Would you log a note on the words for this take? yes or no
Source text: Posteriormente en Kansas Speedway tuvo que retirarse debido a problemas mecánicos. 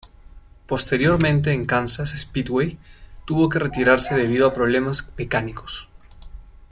no